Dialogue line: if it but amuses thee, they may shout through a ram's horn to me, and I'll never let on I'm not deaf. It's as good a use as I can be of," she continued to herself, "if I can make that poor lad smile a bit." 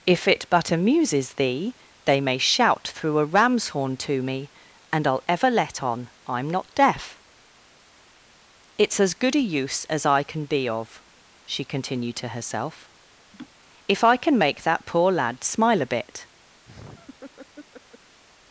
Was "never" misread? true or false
true